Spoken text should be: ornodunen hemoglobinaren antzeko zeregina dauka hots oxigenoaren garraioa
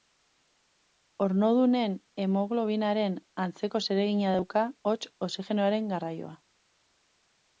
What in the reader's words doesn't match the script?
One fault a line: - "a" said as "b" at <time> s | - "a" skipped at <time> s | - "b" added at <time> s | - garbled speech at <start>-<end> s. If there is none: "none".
none